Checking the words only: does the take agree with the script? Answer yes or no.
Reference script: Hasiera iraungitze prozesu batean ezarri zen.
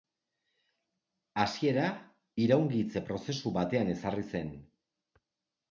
yes